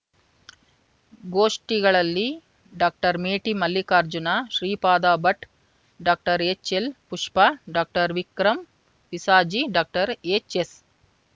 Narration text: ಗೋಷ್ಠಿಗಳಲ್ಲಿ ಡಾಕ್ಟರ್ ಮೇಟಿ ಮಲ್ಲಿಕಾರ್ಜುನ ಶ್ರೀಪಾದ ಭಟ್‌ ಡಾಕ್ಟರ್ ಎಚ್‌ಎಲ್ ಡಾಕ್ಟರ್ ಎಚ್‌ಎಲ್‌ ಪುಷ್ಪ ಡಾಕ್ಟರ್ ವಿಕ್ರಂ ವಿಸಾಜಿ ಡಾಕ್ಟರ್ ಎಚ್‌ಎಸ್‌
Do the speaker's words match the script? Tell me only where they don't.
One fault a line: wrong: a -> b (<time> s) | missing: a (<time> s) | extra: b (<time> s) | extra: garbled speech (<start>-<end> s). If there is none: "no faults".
missing: ಡಾಕ್ಟರ್ ಎಚ್‌ಎಲ್ (6.9 s)